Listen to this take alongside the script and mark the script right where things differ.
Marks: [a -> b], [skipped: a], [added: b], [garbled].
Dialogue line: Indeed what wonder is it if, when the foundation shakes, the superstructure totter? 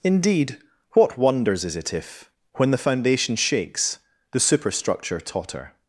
Indeed what [wonder -> wonders] is it if, when the foundation shakes, the superstructure totter?